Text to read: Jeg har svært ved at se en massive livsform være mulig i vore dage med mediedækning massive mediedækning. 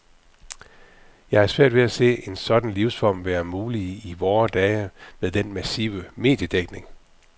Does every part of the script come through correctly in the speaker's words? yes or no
no